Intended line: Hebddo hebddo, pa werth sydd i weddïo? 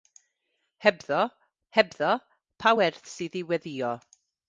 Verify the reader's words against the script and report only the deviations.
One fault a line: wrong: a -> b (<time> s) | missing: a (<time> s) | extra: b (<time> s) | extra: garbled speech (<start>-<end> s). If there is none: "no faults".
no faults